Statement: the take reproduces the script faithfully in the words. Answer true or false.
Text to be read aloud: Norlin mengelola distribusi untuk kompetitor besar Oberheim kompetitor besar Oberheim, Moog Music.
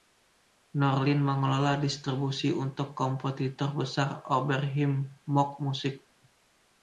false